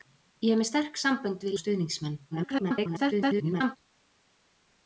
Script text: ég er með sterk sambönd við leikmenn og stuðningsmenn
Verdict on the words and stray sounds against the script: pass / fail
fail